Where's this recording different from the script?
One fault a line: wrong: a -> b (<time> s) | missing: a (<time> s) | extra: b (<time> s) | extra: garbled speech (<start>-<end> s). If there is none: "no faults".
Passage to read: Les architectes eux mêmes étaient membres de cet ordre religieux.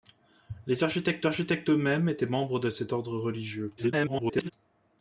extra: architectes (1.3 s)
extra: garbled speech (3.8-4.5 s)